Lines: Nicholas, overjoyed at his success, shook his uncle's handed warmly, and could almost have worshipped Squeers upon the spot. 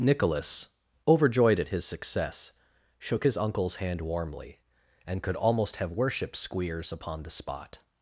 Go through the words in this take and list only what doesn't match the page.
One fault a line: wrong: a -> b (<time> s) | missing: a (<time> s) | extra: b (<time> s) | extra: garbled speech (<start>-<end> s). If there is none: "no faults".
wrong: handed -> hand (3.7 s)